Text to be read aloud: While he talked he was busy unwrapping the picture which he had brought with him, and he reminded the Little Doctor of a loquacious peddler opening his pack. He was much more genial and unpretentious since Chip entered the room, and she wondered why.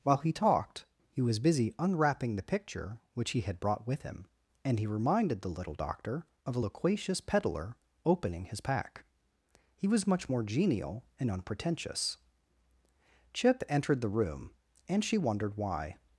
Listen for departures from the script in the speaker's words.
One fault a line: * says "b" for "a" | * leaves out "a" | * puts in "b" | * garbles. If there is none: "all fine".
* leaves out "since"